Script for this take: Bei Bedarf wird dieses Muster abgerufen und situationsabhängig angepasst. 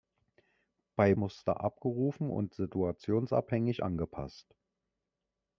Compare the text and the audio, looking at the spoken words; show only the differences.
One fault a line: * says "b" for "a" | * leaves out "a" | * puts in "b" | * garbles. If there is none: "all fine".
* leaves out "Bedarf wird dieses"